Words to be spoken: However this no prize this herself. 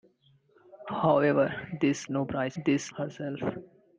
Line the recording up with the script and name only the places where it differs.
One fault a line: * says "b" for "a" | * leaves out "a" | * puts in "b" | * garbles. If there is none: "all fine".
all fine